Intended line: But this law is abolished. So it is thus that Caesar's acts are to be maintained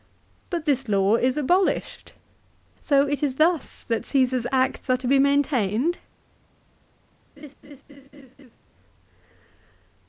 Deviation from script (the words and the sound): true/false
true